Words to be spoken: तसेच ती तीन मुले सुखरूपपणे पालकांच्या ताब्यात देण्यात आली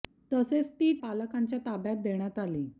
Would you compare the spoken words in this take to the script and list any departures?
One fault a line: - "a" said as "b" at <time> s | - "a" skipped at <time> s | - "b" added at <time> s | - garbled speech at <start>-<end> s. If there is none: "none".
- "तीन मुले सुखरूपपणे" skipped at 0.9 s